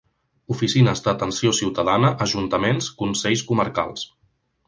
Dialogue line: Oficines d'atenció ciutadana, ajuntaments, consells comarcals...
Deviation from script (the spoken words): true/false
false